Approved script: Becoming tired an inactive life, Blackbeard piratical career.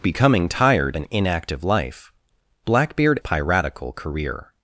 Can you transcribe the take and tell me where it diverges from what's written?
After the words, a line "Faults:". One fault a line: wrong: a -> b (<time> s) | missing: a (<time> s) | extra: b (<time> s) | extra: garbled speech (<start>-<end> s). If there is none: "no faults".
Becoming tired an inactive life, Blackbeard piratical career.
Faults:
no faults